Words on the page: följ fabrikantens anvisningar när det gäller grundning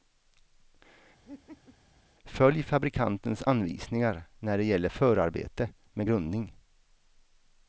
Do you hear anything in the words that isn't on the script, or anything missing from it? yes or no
yes